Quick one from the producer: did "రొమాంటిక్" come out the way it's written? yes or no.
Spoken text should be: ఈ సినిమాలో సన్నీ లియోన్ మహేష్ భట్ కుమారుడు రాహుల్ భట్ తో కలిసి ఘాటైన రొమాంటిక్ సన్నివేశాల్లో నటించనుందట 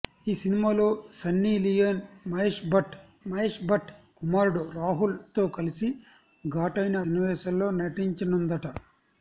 no